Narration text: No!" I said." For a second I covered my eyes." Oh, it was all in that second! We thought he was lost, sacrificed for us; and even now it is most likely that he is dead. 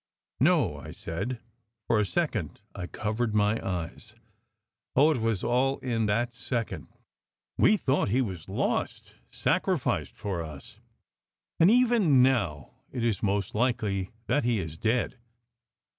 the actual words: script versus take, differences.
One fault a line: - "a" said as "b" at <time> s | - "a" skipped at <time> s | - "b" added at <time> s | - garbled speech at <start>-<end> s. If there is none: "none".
none